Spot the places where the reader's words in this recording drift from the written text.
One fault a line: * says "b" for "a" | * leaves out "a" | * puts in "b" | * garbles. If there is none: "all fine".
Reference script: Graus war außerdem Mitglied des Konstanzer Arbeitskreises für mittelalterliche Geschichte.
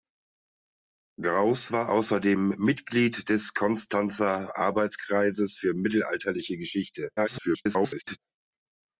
* garbles